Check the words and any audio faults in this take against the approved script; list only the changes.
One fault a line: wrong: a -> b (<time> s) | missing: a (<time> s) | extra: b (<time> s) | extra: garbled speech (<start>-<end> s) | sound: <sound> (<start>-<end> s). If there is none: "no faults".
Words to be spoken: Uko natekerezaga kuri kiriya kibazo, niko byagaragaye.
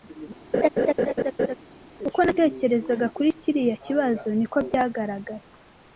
sound: laugh (0.5-1.6 s)